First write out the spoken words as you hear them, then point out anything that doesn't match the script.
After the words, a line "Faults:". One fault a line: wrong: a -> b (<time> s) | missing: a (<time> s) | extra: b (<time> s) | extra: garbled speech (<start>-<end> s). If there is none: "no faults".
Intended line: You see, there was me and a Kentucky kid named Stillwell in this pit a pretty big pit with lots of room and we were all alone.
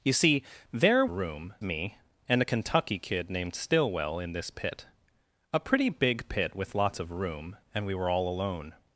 You see, there room me and a Kentucky kid named Stillwell in this pit a pretty big pit with lots of room and we were all alone.
Faults:
wrong: was -> room (1.1 s)